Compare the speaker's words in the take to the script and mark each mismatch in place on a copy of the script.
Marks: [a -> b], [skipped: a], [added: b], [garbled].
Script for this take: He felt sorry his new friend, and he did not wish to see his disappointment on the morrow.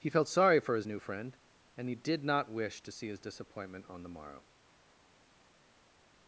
He felt sorry [added: for] his new friend, and he did not wish to see his disappointment on the morrow.